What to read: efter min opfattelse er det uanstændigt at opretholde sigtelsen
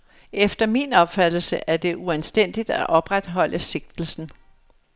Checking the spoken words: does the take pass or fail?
pass